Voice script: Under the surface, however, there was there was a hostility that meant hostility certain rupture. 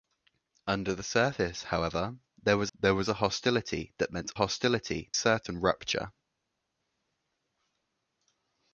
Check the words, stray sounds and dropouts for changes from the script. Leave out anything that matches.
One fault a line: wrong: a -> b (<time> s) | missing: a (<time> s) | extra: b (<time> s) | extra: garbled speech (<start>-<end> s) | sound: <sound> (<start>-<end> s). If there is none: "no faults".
no faults